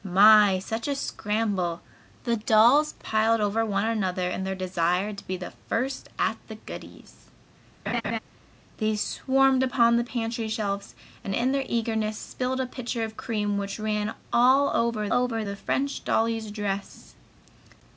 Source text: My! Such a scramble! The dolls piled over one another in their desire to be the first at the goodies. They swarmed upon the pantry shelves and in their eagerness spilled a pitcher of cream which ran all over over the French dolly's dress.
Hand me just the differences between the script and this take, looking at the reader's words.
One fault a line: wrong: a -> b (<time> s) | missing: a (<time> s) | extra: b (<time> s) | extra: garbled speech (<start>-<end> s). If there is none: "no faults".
no faults